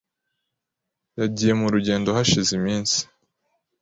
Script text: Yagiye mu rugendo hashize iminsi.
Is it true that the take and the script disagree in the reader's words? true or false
false